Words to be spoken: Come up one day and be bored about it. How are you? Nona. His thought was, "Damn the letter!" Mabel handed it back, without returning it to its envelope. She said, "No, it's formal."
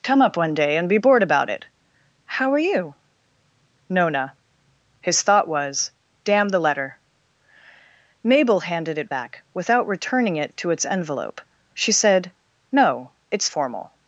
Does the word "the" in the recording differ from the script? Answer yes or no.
no